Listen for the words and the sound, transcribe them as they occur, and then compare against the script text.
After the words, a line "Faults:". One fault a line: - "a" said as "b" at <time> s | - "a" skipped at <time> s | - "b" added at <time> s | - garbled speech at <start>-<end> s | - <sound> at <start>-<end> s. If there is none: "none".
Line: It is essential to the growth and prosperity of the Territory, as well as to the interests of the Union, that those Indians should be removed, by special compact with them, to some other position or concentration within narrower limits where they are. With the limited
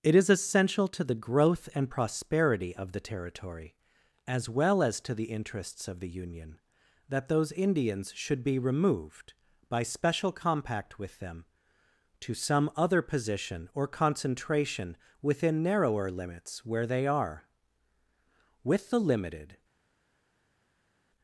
It is essential to the growth and prosperity of the Territory, as well as to the interests of the Union, that those Indians should be removed, by special compact with them, to some other position or concentration within narrower limits where they are. With the limited
Faults:
none